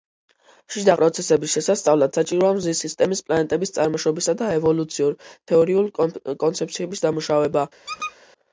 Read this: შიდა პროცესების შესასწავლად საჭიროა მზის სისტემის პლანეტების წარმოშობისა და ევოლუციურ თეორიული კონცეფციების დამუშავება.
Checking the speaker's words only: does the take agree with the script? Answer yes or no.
yes